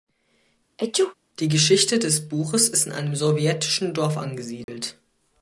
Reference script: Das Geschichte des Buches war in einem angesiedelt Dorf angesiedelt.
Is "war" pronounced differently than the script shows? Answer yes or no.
yes